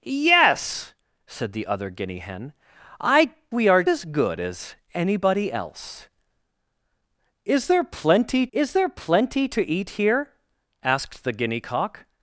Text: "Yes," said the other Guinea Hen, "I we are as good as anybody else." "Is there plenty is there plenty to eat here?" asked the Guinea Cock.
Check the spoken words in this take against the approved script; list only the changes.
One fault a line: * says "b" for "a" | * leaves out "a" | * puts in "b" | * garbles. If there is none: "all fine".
all fine